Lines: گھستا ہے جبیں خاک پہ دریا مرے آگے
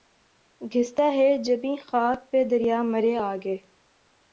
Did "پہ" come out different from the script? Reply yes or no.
no